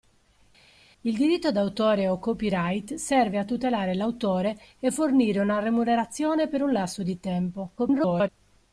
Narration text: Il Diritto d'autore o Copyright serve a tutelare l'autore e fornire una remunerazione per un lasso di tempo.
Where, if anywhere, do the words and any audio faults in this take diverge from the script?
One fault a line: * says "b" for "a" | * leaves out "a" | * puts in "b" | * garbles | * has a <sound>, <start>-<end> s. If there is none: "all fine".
* garbles